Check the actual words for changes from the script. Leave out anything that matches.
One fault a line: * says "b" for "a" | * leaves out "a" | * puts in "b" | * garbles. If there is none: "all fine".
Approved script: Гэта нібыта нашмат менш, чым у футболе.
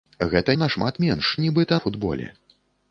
* leaves out "нібыта"
* says "нібыта" for "чым"